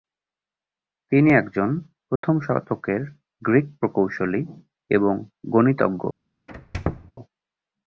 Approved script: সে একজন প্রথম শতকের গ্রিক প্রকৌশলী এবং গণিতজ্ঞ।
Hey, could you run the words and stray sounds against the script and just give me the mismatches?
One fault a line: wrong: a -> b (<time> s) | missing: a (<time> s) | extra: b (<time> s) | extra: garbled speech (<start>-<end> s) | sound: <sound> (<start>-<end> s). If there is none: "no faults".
wrong: সে -> তিনি (1.1 s)
sound: dropout (2.2-2.2 s)
sound: squeak (6.5-7.1 s)